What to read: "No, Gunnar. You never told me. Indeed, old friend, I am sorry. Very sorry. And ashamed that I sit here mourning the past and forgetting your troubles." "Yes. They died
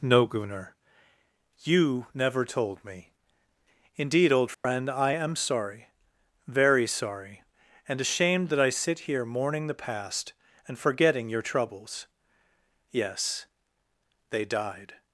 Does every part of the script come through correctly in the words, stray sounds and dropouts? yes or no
no